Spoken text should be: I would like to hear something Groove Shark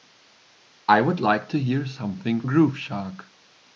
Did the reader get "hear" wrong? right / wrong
right